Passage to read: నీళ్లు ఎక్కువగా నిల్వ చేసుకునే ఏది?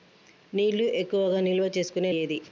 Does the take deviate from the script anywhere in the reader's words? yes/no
no